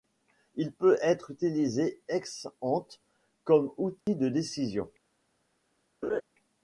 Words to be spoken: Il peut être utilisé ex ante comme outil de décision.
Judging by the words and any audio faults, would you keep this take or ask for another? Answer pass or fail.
fail